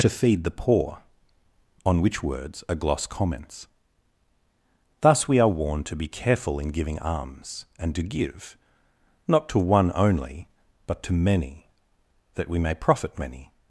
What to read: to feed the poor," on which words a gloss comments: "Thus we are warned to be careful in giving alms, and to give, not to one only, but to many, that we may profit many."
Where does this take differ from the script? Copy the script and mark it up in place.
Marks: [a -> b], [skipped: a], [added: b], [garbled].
to feed the poor," on which words a gloss comments: "Thus we are warned to be careful in giving alms, and to give, not to one only, but to many, that we may profit many."